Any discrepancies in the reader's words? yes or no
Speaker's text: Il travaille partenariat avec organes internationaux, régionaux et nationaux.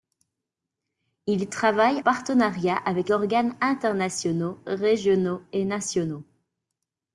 no